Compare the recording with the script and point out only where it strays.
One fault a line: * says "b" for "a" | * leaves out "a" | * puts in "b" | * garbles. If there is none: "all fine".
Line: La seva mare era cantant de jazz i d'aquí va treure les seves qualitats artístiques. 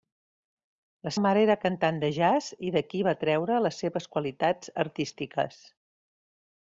* leaves out "seva"